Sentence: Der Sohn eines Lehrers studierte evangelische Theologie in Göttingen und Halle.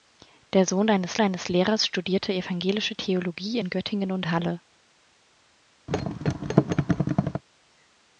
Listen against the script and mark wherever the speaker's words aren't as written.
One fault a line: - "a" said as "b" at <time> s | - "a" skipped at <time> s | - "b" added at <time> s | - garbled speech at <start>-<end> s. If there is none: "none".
- "eines" added at 1.2 s